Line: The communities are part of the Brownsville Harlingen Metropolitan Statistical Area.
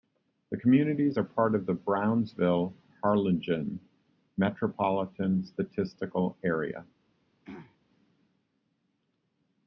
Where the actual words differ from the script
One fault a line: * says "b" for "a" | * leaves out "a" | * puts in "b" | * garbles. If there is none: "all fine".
all fine